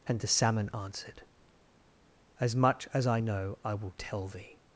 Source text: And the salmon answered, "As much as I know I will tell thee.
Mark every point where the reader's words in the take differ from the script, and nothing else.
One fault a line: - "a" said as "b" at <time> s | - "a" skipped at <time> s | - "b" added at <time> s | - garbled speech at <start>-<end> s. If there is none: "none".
none